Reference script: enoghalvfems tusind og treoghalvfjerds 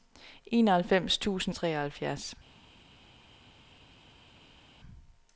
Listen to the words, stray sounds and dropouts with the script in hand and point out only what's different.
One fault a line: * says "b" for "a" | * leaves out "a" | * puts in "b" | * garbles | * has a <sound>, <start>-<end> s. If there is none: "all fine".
all fine